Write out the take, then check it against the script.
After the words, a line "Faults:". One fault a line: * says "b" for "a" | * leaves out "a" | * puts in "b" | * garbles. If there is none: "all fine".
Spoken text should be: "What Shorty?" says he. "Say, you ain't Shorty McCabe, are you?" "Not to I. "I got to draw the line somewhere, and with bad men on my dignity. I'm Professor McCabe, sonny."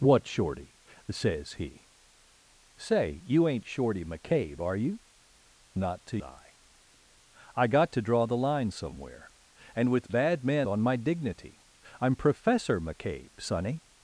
"What Shorty?" says he. "Say, you ain't Shorty McCabe, are you?" "Not to I. "I got to draw the line somewhere, and with bad men on my dignity. I'm Professor McCabe, sonny."
Faults:
all fine